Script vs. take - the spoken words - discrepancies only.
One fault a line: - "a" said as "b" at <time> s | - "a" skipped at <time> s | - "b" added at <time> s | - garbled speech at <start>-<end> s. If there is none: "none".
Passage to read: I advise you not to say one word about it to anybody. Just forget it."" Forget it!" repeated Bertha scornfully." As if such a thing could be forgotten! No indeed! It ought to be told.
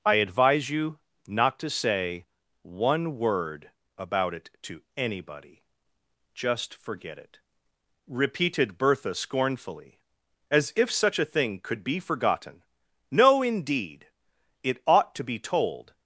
- "Forget it" skipped at 7.4 s